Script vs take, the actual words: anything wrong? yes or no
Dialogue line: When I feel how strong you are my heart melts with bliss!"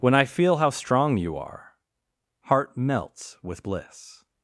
yes